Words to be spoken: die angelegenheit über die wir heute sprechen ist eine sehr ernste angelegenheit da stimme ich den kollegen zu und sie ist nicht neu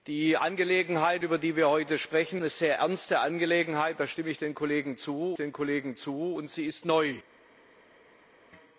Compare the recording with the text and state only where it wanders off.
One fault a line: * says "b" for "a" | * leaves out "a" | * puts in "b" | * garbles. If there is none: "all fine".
* leaves out "ist"
* puts in "den kollegen zu"
* leaves out "nicht"